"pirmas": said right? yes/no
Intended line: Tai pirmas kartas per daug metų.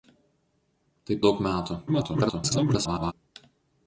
no